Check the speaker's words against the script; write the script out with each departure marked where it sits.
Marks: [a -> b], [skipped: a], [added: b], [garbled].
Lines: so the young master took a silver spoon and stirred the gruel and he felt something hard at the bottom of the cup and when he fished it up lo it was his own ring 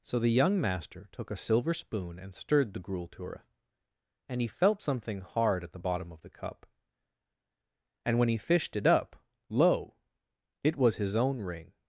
so the young master took a silver spoon and stirred the gruel [added: to her] and he felt something hard at the bottom of the cup and when he fished it up lo it was his own ring